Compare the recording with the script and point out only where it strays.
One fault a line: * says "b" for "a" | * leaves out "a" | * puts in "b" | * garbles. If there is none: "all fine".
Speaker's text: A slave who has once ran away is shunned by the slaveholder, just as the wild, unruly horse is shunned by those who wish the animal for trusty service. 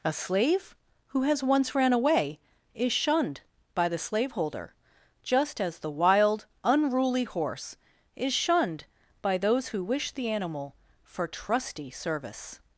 all fine